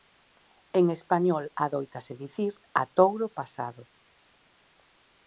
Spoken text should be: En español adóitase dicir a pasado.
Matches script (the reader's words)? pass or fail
fail